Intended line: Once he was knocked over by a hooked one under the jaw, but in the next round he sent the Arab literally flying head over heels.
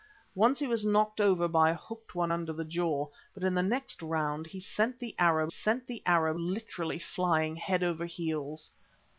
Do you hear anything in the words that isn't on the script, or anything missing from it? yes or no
yes